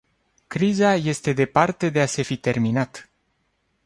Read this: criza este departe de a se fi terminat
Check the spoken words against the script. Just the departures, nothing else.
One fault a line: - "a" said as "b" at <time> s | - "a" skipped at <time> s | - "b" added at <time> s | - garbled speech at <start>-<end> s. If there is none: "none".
none